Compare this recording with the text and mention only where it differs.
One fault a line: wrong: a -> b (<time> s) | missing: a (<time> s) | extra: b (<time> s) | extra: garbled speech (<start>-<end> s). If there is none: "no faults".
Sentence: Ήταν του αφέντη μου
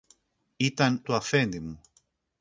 no faults